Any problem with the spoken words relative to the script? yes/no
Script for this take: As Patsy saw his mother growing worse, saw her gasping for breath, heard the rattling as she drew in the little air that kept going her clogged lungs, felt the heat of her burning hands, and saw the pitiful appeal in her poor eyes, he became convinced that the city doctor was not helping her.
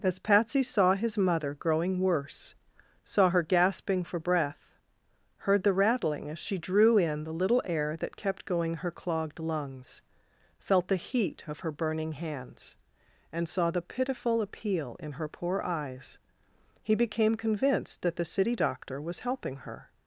yes